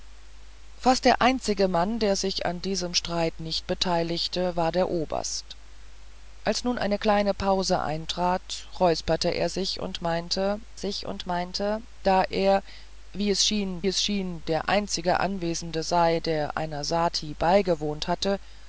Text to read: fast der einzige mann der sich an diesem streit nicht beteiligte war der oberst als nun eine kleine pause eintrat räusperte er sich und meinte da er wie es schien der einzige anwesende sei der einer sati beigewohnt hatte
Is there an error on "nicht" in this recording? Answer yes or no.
no